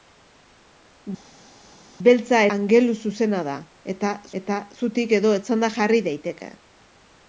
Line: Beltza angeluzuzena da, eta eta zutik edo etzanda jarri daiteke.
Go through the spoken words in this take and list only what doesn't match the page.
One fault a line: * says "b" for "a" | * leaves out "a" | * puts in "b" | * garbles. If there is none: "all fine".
all fine